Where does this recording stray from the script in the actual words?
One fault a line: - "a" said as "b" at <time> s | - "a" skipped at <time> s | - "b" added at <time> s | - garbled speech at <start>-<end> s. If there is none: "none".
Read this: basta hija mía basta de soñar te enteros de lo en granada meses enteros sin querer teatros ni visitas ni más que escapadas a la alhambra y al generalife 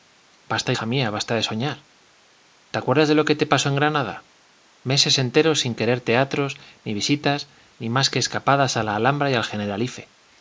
- "enteros" said as "acuerdas" at 2.8 s
- "que te pasó" added at 3.2 s